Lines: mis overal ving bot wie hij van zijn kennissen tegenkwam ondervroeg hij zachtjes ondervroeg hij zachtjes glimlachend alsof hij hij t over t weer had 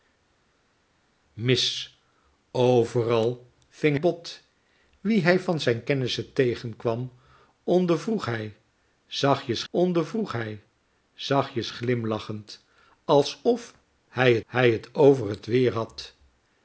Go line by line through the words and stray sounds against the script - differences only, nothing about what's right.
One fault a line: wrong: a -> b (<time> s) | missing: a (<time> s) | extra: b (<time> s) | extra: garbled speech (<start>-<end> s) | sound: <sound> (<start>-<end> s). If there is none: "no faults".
no faults